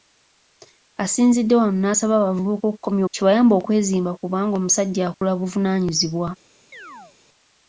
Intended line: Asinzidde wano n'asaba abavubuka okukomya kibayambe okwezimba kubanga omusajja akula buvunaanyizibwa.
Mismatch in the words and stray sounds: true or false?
true